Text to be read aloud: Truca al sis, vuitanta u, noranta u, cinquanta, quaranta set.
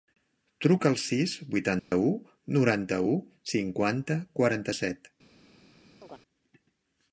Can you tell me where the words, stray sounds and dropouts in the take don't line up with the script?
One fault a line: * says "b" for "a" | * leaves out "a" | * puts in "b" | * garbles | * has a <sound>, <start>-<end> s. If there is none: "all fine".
* has a dropout, 1.8-1.9 s
* has a chirp, 6.0-6.2 s